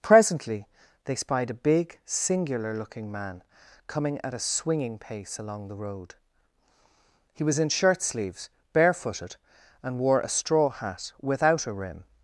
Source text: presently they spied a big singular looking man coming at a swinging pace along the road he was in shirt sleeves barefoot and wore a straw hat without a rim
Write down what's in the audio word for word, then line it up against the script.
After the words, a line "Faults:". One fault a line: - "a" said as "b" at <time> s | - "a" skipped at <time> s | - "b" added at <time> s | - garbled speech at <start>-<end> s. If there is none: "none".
presently they spied a big singular looking man coming at a swinging pace along the road he was in shirt sleeves barefooted and wore a straw hat without a rim
Faults:
- "barefoot" said as "barefooted" at 8.7 s